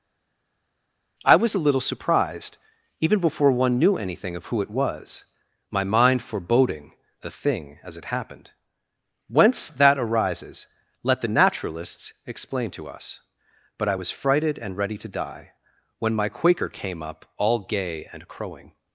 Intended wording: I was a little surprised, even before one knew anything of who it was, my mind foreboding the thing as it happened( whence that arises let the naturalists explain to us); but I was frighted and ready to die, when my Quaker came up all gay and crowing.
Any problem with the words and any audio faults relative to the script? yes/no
no